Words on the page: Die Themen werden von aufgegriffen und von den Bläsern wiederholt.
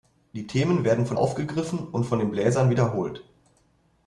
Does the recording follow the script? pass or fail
pass